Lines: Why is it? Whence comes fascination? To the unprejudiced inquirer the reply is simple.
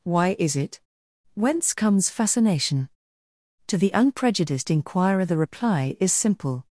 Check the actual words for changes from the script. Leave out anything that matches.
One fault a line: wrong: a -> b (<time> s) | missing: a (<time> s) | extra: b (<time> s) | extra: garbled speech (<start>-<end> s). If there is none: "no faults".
no faults